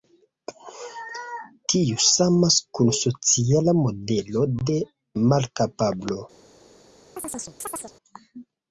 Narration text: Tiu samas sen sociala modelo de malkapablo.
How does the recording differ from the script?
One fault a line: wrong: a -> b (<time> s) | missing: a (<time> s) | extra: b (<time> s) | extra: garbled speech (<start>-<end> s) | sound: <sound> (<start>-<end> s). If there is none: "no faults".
wrong: sen -> kun (2.8 s)
sound: chirp (7.2-7.9 s)